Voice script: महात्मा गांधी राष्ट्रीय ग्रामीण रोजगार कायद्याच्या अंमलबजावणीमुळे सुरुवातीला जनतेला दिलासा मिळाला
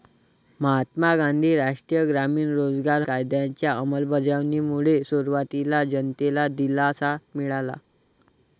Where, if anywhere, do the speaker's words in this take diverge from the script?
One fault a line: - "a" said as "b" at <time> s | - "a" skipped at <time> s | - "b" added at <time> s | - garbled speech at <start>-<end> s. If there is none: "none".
none